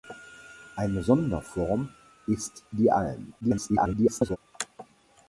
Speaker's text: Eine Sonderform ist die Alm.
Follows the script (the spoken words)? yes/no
no